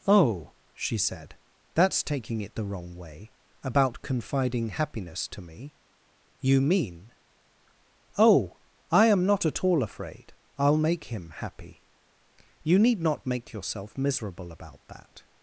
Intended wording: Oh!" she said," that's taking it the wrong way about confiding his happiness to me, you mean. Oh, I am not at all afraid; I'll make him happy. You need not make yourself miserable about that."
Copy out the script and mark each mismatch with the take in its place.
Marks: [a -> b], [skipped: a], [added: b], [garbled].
Oh!" she said," that's taking it the wrong way about confiding [skipped: his] happiness to me, you mean. Oh, I am not at all afraid; I'll make him happy. You need not make yourself miserable about that."